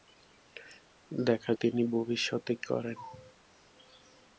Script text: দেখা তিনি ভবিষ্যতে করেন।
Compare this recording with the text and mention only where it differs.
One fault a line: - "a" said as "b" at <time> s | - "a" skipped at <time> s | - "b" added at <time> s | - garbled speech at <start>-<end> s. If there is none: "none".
none